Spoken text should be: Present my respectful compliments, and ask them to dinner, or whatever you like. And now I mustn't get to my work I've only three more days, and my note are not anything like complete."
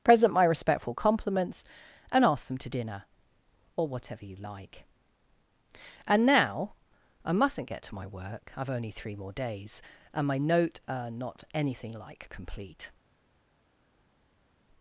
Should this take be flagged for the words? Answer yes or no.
no